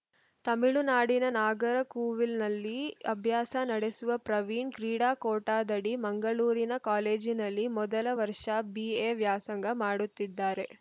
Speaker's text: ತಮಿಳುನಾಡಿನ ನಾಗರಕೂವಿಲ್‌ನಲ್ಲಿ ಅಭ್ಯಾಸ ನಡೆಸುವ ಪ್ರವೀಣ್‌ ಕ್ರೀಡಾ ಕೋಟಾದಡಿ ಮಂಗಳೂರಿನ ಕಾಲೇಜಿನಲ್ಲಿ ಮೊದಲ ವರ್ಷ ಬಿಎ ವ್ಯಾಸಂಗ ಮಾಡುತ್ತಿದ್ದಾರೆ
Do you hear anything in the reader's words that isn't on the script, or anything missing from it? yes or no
no